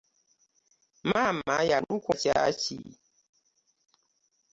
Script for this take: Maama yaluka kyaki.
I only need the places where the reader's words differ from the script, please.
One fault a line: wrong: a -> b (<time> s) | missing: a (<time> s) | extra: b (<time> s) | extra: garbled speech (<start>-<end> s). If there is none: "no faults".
no faults